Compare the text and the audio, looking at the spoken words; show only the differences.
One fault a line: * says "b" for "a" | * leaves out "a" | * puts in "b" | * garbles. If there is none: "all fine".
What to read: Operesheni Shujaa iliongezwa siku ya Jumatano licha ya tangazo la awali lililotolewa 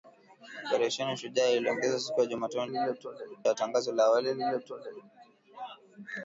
* says "lililotolewa" for "licha"